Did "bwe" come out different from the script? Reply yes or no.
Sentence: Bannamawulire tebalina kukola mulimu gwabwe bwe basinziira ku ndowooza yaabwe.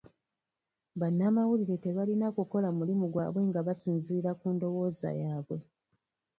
yes